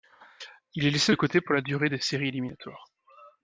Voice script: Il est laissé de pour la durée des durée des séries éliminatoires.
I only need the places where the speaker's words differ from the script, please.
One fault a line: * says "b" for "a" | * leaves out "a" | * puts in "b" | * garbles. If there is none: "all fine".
* puts in "côté"
* leaves out "durée des"